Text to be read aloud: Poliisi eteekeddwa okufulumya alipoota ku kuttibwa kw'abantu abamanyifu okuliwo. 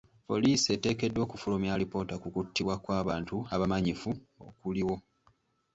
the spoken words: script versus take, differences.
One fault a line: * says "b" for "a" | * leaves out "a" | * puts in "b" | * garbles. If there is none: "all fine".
all fine